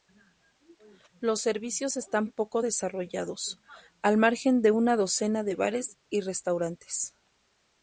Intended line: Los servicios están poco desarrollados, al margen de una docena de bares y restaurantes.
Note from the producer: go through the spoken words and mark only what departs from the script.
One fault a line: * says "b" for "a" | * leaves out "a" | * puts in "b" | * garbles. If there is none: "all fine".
all fine